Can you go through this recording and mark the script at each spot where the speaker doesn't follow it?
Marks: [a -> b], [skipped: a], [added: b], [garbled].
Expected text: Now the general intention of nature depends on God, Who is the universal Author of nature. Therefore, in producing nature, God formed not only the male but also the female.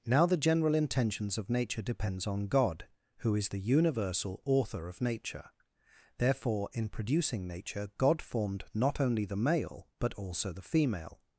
Now the general [intention -> intentions] of nature depends on God, Who is the universal Author of nature. Therefore, in producing nature, God formed not only the male but also the female.